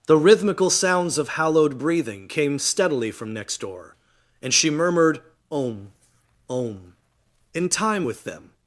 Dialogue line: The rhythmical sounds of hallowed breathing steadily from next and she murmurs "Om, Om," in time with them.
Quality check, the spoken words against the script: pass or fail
fail